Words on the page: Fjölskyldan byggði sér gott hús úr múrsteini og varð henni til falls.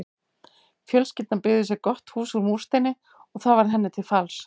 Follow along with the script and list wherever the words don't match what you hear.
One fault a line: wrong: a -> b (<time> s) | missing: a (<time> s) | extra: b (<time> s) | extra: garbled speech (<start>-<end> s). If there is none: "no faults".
extra: það (3.5 s)